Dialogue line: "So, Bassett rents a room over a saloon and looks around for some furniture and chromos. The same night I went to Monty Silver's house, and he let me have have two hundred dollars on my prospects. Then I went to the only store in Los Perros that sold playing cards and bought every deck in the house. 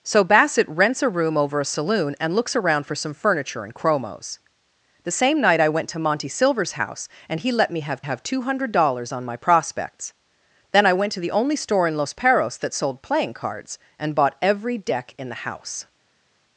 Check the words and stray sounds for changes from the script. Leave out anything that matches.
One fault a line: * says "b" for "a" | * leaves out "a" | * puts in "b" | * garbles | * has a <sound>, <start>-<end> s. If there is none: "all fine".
all fine